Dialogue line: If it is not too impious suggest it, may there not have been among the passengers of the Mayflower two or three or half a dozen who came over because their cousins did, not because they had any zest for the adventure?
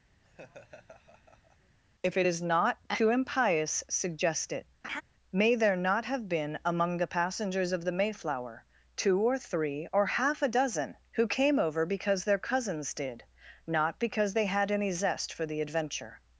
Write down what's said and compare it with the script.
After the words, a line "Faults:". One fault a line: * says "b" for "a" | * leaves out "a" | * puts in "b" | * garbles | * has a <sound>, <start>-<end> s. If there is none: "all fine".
If it is not too impious suggest it, may there not have been among the passengers of the Mayflower two or three or half a dozen who came over because their cousins did, not because they had any zest for the adventure?
Faults:
* has a laugh, 0.2-1.8 s
* has a laugh, 4.8-5.0 s